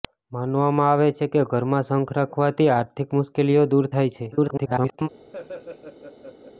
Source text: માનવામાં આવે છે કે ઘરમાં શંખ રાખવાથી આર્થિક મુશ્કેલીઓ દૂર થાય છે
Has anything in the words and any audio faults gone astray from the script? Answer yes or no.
yes